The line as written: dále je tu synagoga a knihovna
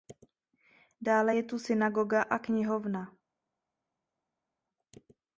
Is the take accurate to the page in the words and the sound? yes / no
yes